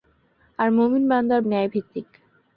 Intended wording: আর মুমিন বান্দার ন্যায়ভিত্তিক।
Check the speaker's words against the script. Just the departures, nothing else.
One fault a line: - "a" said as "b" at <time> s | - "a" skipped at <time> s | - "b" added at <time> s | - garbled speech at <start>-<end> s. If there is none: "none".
none